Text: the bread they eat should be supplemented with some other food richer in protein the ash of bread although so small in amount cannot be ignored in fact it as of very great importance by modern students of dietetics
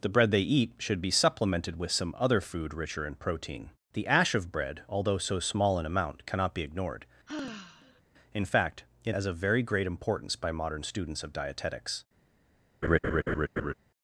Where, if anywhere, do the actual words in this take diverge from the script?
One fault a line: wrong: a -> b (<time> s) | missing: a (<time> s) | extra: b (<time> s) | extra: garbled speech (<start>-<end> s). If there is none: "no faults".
no faults